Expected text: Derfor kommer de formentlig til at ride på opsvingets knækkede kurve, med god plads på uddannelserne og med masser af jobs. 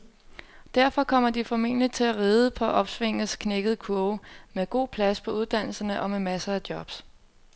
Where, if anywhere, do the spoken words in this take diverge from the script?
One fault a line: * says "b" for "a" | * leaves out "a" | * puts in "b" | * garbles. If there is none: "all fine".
all fine